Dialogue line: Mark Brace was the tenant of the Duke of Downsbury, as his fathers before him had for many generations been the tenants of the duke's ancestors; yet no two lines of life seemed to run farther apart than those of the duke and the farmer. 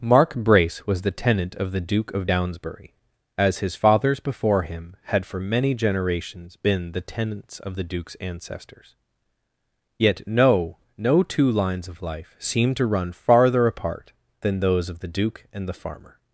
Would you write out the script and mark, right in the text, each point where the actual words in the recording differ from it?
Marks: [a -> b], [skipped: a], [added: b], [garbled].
Mark Brace was the tenant of the Duke of Downsbury, as his fathers before him had for many generations been the tenants of the duke's ancestors; yet no [added: no] two lines of life seemed to run farther apart than those of the duke and the farmer.